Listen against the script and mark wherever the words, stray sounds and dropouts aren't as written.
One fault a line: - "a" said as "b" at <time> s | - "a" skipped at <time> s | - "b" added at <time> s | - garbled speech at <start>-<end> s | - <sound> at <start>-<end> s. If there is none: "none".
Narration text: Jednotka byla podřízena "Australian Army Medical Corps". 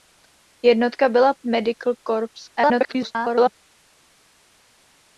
- "podřízena Australian Army" skipped at 1.3 s
- garbled speech at 2.6-3.5 s